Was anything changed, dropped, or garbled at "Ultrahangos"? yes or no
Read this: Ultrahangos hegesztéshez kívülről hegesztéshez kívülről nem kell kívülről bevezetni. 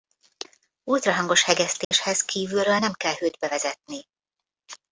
no